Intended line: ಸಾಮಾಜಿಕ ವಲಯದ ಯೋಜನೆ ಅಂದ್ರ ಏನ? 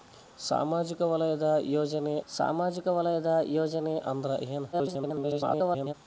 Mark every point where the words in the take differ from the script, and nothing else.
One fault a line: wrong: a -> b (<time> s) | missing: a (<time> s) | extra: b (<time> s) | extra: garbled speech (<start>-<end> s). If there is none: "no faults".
extra: ಸಾಮಾಜಿಕ ವಲಯದ ಯೋಜನೆ (2.3 s)
extra: garbled speech (4.7-5.9 s)